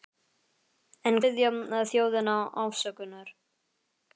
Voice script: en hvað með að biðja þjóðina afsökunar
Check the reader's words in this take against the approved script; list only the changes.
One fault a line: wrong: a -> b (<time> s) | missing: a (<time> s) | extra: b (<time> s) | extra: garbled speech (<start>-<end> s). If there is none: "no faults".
missing: hvað með að (1.2 s)